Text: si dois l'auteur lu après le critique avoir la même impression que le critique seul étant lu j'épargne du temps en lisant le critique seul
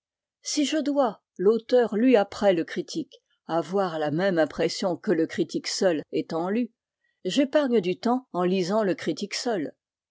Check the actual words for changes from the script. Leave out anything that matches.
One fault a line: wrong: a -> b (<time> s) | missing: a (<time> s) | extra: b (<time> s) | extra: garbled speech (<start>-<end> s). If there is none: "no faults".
extra: je (0.7 s)